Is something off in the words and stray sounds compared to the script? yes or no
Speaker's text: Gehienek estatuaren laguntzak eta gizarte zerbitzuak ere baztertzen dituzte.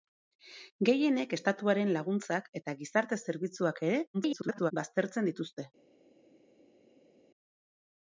yes